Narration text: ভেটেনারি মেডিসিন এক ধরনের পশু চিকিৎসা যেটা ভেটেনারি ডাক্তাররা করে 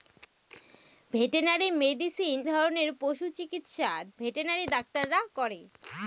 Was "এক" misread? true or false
true